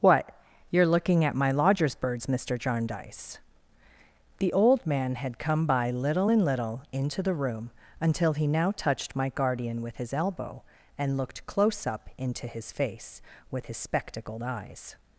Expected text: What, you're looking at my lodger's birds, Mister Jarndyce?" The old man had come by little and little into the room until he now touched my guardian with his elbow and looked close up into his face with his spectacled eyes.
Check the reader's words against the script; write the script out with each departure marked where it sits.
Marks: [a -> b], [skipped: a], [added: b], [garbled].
What, you're looking at my lodger's birds, Mister Jarndyce?" The old man had come by little and little into the room until he now touched my guardian with his elbow and looked close up into his face with his spectacled eyes.